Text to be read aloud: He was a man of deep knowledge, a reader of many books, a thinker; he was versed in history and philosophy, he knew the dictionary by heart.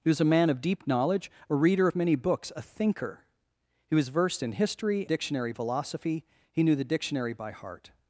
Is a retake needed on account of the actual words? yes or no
yes